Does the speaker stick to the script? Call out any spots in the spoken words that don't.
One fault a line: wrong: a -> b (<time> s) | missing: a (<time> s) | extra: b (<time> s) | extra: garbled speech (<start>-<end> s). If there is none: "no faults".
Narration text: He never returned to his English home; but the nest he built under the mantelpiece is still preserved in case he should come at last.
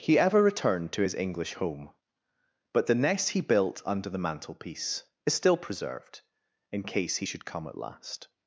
wrong: never -> ever (0.2 s)